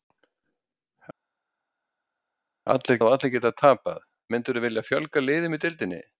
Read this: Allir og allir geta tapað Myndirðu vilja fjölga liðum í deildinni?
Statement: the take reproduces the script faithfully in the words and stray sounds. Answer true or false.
true